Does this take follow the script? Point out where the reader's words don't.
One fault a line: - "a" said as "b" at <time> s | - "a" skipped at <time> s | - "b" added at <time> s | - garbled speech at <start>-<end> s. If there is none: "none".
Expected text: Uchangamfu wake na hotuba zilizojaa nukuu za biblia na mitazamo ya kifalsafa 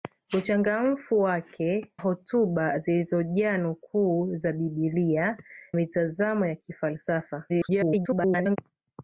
- "na" skipped at 1.9 s
- "na" skipped at 5.4 s
- garbled speech at 7.5-8.6 s